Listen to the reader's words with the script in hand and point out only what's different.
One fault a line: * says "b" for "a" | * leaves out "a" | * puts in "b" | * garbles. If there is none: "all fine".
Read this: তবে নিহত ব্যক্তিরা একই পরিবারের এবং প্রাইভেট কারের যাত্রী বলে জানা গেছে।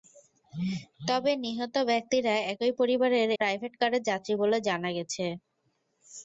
* leaves out "এবং"